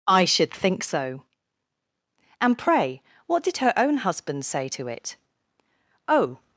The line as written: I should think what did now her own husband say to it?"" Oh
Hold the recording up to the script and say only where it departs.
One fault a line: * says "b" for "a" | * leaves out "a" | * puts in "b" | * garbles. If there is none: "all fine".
* puts in "so And pray"
* leaves out "now"